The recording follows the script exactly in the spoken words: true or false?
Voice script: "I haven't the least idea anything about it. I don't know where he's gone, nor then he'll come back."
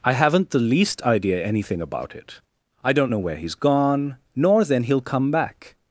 true